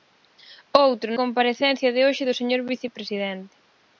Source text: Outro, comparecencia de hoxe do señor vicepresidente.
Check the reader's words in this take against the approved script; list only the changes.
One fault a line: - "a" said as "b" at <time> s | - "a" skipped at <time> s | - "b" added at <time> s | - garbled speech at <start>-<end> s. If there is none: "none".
none